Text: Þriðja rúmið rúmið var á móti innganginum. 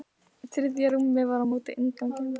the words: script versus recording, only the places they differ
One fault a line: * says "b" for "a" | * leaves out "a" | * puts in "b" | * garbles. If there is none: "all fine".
* leaves out "rúmið"